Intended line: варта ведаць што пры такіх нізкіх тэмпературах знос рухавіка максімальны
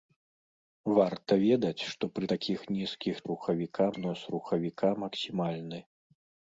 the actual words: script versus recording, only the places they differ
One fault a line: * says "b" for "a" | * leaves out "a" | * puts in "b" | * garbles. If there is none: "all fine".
* says "рухавіка" for "тэмпературах"